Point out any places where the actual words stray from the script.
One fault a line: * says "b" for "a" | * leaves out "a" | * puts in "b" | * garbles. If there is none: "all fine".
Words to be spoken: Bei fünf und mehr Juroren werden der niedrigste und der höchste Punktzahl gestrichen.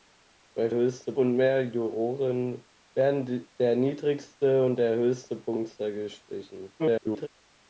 * says "höchste" for "fünf"
* garbles